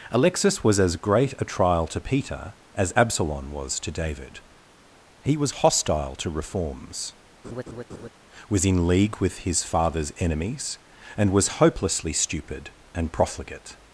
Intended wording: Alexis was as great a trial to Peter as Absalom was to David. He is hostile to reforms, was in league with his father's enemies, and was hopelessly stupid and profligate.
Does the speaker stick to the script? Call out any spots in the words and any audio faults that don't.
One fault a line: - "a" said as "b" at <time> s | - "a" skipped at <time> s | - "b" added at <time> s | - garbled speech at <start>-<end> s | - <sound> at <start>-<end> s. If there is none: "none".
- "is" said as "was" at 5.3 s
- laugh at 7.4-8.1 s